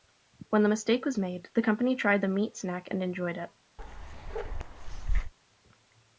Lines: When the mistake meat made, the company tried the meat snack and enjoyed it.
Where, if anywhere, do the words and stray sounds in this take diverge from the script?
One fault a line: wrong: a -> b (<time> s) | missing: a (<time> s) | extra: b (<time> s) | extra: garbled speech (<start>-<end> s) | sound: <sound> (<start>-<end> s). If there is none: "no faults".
wrong: meat -> was (1.1 s)
sound: bark (3.8-5.3 s)